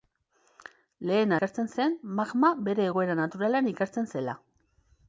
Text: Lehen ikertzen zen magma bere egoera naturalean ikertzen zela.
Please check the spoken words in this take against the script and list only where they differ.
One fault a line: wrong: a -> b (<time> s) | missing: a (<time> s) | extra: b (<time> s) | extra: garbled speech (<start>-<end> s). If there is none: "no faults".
no faults